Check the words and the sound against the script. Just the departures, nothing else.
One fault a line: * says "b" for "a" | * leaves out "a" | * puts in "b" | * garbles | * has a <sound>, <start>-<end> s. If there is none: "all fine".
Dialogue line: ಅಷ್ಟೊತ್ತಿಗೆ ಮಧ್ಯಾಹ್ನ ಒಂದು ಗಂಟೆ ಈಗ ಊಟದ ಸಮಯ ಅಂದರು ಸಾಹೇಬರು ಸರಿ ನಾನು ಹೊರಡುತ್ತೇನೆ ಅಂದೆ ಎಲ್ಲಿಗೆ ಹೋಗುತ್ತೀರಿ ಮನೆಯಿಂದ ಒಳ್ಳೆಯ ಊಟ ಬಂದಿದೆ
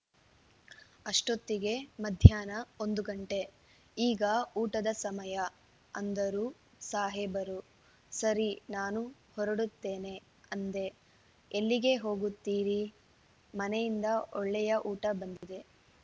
* has a dropout, 15.4-15.4 s